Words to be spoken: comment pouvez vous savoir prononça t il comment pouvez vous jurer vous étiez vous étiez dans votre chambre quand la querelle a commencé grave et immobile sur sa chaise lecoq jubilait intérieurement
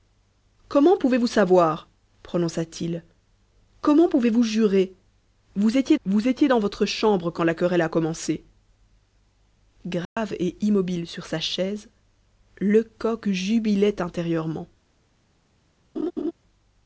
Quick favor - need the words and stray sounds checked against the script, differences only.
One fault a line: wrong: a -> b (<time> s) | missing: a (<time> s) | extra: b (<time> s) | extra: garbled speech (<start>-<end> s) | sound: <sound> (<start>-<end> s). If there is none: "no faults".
sound: dropout (10.0-10.2 s)
sound: laugh (16.0-16.3 s)